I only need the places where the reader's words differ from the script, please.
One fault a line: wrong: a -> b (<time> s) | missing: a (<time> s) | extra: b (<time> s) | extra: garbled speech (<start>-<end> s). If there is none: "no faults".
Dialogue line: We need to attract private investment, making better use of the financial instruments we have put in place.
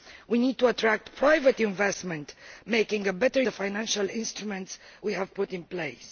missing: use of (3.4 s)